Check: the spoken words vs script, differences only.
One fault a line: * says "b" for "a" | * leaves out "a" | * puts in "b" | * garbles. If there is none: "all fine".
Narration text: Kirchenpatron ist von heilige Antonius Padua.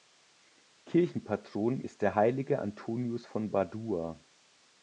* says "der" for "von"
* puts in "von"